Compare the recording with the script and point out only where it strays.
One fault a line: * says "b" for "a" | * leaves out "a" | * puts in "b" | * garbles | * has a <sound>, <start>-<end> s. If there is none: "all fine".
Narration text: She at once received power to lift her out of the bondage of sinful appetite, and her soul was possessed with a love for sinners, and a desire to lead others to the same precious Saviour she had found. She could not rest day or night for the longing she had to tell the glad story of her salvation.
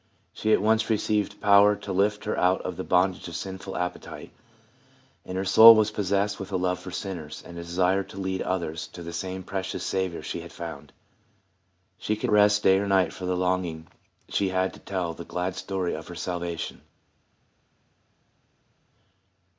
* leaves out "not"